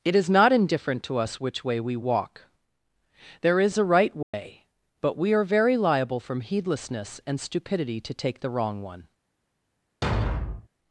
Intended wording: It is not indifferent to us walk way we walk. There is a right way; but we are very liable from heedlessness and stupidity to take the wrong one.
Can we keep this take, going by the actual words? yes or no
no